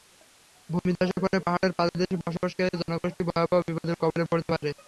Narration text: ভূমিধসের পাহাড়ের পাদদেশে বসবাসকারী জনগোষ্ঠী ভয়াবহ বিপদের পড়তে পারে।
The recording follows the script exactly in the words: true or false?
false